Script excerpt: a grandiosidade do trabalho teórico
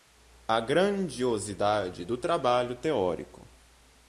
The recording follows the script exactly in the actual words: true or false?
true